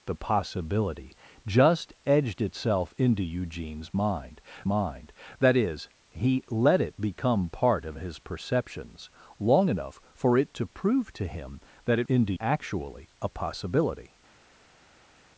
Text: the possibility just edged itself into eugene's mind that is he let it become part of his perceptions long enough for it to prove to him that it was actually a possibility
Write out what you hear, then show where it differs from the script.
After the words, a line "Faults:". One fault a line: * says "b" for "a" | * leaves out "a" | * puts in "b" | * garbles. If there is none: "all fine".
the possibility just edged itself into eugene's mind mind that is he let it become part of his perceptions long enough for it to prove to him that it into actually a possibility
Faults:
* puts in "mind"
* says "into" for "was"